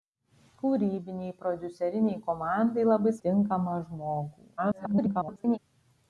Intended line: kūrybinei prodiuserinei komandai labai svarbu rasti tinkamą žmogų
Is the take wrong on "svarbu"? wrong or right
wrong